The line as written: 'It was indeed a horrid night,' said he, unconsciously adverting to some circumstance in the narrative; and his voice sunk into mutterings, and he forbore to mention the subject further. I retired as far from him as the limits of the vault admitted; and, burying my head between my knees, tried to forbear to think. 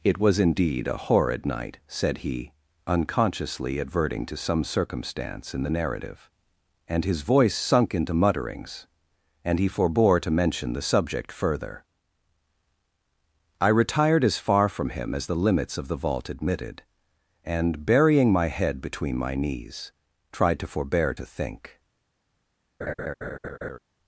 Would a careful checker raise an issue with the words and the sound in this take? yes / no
yes